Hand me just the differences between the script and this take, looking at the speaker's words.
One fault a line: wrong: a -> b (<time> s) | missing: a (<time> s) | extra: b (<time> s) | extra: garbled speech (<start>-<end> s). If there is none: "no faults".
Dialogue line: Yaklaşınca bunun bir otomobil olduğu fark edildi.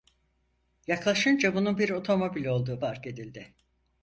no faults